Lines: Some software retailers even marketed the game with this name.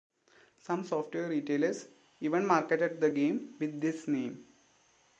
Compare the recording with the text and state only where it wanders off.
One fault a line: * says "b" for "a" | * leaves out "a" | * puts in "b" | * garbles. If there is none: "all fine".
all fine